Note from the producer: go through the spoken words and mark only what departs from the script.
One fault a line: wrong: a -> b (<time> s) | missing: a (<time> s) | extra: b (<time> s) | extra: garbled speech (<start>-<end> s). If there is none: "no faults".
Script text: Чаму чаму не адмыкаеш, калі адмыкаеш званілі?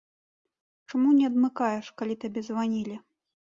missing: чаму (1.1 s)
wrong: адмыкаеш -> табе (2.2 s)